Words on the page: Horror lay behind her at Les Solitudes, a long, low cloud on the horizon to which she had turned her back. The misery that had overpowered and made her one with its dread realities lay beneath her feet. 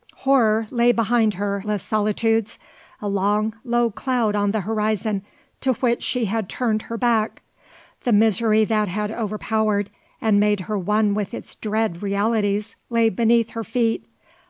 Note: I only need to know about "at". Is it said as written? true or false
false